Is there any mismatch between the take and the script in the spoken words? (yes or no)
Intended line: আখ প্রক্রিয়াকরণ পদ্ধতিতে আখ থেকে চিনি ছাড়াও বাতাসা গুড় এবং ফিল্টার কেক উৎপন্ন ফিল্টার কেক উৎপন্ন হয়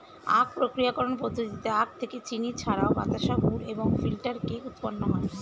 yes